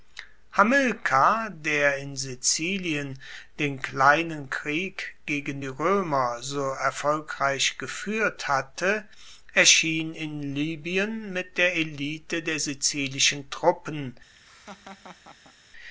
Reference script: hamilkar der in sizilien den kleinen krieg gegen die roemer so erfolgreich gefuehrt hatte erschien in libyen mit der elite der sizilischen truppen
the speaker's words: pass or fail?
pass